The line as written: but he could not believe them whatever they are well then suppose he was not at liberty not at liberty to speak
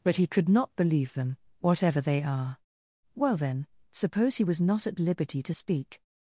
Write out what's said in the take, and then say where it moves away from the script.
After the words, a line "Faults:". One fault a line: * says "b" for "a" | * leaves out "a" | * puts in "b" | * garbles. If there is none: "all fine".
but he could not believe them whatever they are well then suppose he was not at liberty to speak
Faults:
* leaves out "not at liberty"